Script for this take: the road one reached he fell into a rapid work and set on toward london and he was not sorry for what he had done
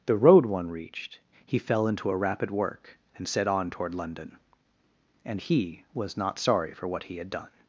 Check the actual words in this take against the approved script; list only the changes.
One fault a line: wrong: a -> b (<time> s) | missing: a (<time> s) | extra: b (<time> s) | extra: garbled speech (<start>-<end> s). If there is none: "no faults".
no faults